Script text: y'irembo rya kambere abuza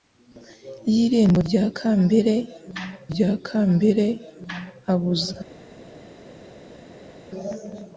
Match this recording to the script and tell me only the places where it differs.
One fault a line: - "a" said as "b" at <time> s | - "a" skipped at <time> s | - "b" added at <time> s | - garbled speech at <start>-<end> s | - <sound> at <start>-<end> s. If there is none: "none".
- "rya kambere" added at 3.1 s